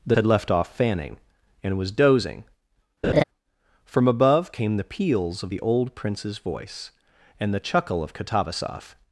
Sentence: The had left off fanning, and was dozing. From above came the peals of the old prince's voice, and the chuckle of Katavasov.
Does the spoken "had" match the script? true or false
true